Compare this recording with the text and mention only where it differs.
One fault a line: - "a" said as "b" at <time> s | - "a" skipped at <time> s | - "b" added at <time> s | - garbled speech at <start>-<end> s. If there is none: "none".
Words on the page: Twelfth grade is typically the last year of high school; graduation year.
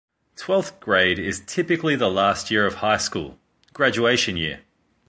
none